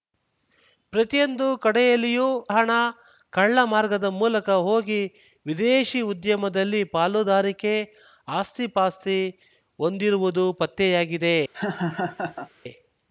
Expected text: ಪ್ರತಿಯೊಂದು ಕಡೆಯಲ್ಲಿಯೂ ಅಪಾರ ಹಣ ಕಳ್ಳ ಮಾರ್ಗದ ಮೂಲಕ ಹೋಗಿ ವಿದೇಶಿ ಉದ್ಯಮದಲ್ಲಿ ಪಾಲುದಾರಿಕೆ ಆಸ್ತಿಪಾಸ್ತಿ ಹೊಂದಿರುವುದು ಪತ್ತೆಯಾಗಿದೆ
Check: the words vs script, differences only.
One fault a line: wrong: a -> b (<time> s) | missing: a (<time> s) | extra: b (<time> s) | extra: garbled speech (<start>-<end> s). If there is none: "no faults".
missing: ಅಪಾರ (2.3 s)